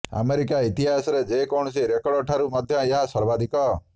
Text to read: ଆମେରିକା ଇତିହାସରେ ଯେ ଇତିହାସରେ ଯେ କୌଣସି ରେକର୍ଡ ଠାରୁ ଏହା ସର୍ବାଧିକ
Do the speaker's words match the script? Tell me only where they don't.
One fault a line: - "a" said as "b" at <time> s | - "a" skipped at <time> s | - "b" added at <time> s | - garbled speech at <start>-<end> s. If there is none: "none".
- "ଇତିହାସରେ ଯେ" skipped at 1.4 s
- "ମଧ୍ୟ" added at 2.5 s